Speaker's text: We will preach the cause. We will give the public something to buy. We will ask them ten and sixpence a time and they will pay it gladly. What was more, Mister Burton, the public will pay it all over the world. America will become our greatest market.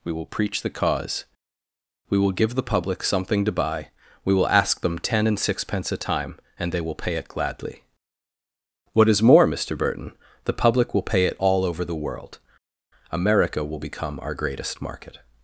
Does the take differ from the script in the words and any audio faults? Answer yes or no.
yes